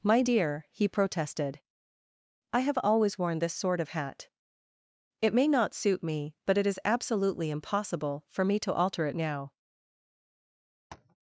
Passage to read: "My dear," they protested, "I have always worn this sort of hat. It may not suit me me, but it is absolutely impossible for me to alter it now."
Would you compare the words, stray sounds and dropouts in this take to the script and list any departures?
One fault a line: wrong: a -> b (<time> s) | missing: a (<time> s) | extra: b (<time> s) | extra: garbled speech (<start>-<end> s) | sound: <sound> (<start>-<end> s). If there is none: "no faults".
wrong: they -> he (0.7 s)
missing: me (6.4 s)
sound: tap (10.9-11.2 s)